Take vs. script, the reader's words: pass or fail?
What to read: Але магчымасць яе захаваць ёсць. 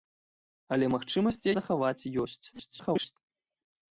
fail